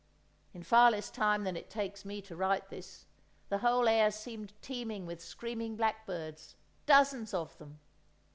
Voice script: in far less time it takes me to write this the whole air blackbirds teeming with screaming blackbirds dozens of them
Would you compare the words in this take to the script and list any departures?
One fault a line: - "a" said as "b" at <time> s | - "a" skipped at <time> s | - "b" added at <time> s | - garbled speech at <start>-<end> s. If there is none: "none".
- "than" added at 1.4 s
- "blackbirds" said as "seemed" at 4.1 s